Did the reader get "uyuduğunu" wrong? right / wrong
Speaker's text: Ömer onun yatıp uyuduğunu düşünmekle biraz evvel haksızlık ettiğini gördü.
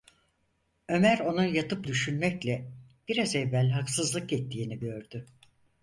wrong